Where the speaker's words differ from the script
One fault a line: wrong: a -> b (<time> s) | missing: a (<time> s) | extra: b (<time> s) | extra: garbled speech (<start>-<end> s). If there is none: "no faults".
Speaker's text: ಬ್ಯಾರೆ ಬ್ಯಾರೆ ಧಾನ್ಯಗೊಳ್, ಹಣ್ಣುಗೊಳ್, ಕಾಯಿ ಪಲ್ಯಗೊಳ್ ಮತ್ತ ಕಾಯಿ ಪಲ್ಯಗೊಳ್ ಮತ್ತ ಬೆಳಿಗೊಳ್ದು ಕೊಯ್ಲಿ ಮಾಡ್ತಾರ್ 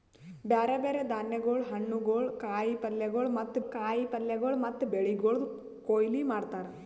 no faults